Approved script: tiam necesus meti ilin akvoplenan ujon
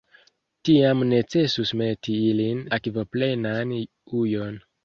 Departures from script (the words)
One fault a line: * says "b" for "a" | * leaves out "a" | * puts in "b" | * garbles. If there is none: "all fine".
all fine